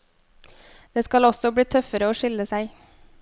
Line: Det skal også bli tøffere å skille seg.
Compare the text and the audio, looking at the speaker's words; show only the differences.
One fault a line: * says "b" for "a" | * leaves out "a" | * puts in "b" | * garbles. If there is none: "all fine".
all fine